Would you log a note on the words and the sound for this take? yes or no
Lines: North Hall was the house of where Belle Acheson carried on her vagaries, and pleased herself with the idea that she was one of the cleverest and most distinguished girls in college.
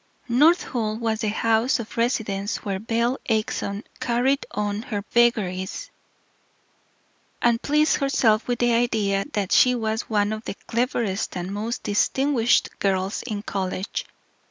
yes